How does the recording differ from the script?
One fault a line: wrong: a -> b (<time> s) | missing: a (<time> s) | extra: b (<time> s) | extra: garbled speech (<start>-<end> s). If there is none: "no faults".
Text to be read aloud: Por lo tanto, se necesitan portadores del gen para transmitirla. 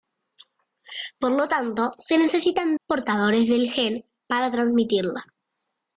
no faults